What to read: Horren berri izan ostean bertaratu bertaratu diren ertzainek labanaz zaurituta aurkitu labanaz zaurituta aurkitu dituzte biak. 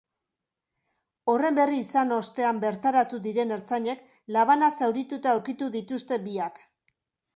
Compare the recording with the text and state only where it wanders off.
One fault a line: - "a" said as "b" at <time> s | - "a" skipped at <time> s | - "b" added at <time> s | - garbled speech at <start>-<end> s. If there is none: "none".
- "bertaratu" skipped at 3.2 s
- "labanaz zaurituta aurkitu" skipped at 5.7 s